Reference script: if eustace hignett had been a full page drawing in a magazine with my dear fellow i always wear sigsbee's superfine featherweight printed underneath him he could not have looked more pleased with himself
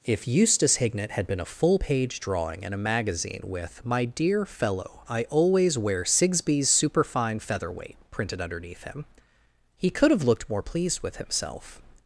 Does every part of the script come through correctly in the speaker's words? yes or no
no